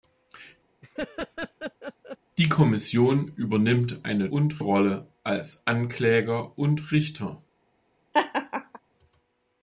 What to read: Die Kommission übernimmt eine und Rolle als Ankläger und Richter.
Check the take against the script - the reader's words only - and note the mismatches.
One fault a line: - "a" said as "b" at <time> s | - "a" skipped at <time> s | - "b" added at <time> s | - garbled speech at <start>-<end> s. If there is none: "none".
none